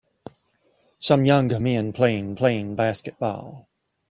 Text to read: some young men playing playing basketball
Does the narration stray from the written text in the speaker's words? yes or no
no